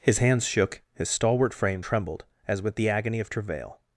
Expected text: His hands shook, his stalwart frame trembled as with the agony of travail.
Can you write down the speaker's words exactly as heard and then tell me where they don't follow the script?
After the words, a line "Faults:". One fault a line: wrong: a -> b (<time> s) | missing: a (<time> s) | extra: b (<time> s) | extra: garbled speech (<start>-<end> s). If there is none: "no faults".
His hands shook, his stalwart frame trembled as with the agony of travail.
Faults:
no faults